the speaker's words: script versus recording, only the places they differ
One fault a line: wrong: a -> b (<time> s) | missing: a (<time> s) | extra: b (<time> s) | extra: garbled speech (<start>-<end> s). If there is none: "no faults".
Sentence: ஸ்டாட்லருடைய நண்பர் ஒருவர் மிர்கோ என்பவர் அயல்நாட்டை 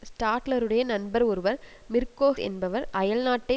no faults